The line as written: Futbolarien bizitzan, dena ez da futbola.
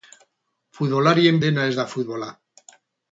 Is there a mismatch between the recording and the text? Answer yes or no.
yes